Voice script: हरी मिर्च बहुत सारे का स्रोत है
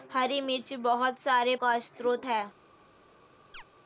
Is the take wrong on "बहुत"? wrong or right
right